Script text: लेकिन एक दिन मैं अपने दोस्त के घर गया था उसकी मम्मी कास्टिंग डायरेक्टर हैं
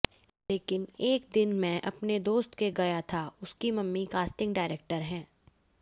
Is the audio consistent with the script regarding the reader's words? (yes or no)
no